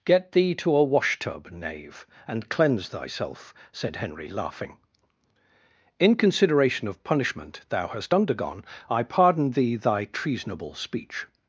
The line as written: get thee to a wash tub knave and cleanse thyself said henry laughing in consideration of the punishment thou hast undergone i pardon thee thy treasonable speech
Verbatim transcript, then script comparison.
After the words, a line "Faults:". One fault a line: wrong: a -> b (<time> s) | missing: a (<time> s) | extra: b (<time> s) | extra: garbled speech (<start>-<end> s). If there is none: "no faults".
get thee to a wash tub knave and cleanse thyself said henry laughing in consideration of punishment thou hast undergone i pardon thee thy treasonable speech
Faults:
missing: the (7.0 s)